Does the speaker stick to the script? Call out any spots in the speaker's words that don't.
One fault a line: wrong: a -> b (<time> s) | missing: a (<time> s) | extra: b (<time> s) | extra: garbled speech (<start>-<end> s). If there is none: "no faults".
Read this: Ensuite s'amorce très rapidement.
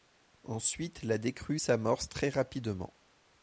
extra: la décrue (1.0 s)